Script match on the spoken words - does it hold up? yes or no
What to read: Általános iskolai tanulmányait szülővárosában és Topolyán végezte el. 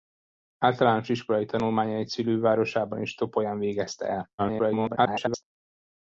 no